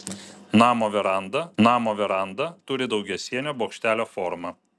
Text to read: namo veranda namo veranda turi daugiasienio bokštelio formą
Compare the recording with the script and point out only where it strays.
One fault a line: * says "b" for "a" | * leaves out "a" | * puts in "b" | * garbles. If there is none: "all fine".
all fine